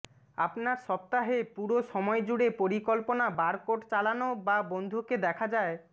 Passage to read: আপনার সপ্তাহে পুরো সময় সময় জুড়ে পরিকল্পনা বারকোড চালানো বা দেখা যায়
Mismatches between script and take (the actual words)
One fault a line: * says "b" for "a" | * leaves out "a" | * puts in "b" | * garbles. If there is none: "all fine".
* leaves out "সময়"
* puts in "বন্ধুকে"